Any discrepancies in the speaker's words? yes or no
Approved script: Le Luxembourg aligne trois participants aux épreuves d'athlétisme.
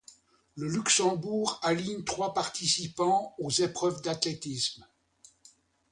no